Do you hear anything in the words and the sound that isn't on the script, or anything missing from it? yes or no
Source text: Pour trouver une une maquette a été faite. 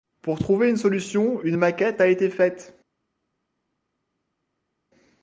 yes